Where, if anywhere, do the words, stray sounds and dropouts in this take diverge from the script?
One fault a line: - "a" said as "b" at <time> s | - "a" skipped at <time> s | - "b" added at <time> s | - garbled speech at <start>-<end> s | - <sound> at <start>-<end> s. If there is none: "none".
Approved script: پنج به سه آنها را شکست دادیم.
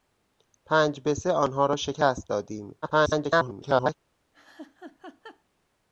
- garbled speech at 2.8-3.9 s
- laugh at 4.3-5.4 s